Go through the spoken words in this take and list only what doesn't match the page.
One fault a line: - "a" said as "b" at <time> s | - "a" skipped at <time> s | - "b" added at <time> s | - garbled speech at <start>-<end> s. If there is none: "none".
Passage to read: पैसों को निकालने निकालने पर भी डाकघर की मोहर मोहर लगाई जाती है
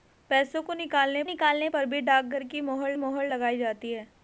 none